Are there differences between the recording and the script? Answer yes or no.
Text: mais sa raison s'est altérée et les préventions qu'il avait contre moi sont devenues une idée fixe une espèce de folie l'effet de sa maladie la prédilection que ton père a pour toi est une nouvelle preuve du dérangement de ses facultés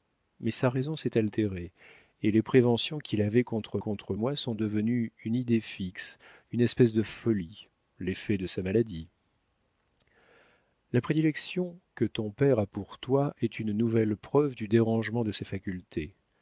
yes